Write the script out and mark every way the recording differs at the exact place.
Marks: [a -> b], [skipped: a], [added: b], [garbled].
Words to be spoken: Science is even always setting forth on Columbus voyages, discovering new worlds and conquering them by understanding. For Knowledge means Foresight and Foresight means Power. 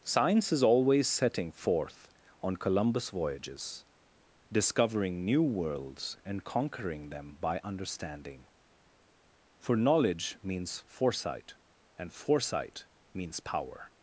Science is [skipped: even] always setting forth on Columbus voyages, discovering new worlds and conquering them by understanding. For Knowledge means Foresight and Foresight means Power.